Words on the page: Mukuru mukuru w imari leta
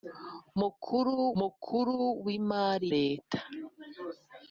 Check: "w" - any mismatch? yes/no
no